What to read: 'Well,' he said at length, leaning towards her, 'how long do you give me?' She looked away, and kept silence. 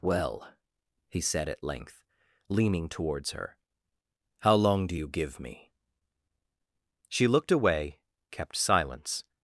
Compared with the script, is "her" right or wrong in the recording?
right